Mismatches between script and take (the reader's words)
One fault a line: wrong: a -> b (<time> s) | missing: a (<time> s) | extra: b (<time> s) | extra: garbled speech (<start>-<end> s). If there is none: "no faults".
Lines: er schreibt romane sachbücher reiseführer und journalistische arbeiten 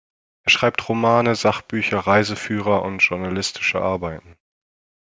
no faults